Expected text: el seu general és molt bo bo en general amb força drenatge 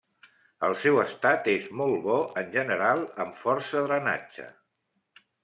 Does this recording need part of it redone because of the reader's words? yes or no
yes